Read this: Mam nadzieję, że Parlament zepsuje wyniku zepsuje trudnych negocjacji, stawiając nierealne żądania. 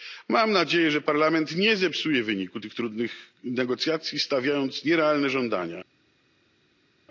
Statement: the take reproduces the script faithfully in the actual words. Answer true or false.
false